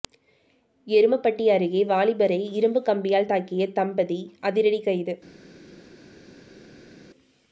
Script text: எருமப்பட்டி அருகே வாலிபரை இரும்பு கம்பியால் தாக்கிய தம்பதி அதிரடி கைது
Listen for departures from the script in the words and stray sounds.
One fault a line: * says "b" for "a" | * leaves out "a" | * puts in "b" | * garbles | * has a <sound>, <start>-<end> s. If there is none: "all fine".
all fine